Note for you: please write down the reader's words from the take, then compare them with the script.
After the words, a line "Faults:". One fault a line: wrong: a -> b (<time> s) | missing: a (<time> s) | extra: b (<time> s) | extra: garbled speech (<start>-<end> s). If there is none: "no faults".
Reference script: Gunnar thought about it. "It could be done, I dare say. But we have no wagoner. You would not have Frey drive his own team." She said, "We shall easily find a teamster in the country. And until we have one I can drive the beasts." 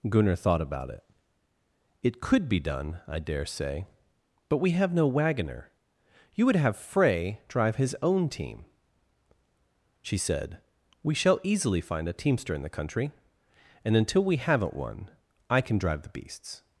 Gunnar thought about it. "It could be done, I dare say. But we have no wagoner. You would have Frey drive his own team." She said, "We shall easily find a teamster in the country. And until we haven't one I can drive the beasts."
Faults:
missing: not (6.5 s)
wrong: have -> haven't (14.4 s)